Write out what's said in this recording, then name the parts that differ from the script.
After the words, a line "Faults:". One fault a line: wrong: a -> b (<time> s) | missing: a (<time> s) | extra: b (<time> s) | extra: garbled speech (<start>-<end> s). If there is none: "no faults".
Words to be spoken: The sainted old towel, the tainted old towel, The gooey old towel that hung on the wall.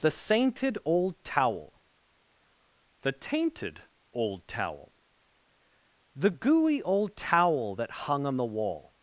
The sainted old towel, the tainted old towel, The gooey old towel that hung on the wall.
Faults:
no faults